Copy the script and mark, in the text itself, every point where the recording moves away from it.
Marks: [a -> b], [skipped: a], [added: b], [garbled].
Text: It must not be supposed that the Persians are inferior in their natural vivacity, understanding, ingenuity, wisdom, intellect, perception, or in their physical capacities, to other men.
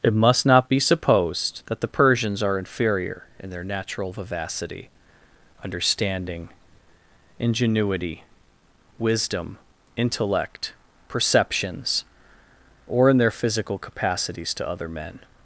It must not be supposed that the Persians are inferior in their natural vivacity, understanding, ingenuity, wisdom, intellect, [perception, -> perceptions] or in their physical capacities, to other men.